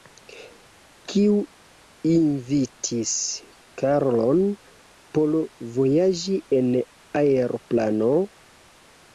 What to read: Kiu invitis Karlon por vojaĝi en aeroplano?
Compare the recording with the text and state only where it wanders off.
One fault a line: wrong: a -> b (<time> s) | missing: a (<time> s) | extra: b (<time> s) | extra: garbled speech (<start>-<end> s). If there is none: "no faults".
no faults